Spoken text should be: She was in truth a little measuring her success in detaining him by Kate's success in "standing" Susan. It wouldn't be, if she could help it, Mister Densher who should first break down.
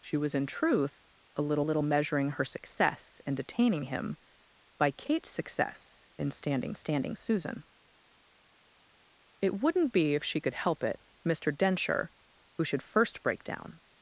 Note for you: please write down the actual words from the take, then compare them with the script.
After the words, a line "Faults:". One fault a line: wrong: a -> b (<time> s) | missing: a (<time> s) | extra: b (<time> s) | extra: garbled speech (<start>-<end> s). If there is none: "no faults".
She was in truth a little little measuring her success in detaining him by Kate's success in "standing standing" Susan. It wouldn't be, if she could help it, Mister Densher who should first break down.
Faults:
extra: little (1.6 s)
extra: standing (6.7 s)